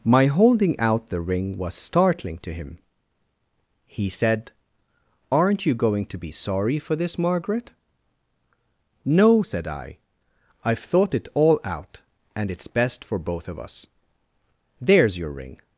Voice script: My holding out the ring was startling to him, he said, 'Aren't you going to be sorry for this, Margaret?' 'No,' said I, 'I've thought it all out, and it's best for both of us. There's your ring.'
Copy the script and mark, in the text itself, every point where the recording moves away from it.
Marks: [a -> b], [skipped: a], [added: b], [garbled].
My holding out the ring was startling to him, he said, 'Aren't you going to be sorry for this, Margaret?' 'No,' said I, 'I've thought it all out, and it's best for both of us. There's your ring.'